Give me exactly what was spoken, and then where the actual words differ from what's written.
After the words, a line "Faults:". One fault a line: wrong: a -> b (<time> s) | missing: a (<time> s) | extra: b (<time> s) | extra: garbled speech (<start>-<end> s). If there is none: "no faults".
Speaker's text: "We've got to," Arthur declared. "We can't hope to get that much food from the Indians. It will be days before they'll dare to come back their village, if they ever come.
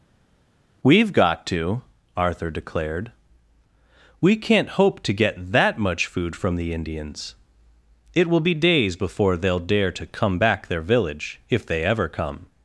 "We've got to," Arthur declared. "We can't hope to get that much food from the Indians. It will be days before they'll dare to come back their village, if they ever come.
Faults:
no faults